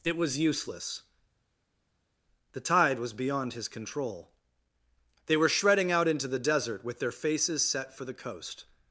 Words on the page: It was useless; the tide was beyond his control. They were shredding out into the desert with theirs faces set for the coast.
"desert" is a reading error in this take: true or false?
false